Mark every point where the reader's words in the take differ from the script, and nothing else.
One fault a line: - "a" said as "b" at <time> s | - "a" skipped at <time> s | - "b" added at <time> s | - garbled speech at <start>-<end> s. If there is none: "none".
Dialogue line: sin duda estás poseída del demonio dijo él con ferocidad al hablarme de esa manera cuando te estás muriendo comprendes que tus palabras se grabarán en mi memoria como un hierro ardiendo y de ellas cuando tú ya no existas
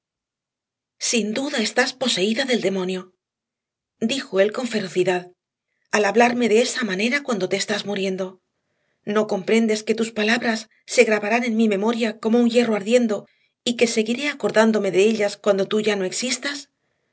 - "no" added at 9.1 s
- "que seguiré acordándome" added at 13.8 s